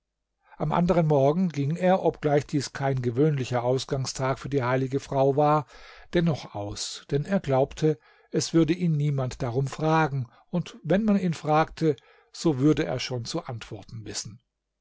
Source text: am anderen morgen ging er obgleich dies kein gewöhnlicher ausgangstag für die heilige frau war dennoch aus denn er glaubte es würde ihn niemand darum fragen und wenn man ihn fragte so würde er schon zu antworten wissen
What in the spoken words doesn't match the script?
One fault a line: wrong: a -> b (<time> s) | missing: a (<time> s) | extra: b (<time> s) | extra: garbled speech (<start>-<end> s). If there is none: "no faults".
no faults